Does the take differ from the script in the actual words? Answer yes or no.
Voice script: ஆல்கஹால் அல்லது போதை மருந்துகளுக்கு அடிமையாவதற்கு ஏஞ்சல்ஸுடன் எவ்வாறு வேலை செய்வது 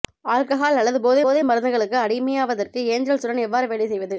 yes